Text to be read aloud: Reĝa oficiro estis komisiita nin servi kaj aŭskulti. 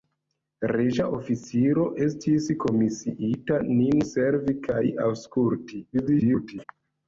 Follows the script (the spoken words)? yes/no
no